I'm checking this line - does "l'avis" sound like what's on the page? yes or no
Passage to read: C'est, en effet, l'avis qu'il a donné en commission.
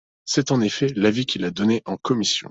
yes